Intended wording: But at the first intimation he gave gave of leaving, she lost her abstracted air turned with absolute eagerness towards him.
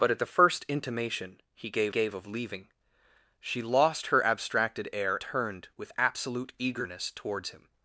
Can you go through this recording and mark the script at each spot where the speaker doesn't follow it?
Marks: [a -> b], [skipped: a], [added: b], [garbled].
But at the first intimation he gave gave of leaving, she lost her abstracted air turned with absolute eagerness towards him.